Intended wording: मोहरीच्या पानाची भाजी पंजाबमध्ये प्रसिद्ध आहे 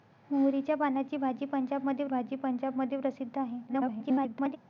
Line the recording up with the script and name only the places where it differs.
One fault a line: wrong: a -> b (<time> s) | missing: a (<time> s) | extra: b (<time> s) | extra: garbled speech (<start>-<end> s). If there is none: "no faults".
extra: भाजी पंजाबमध्ये (2.1 s)
extra: garbled speech (3.7-4.6 s)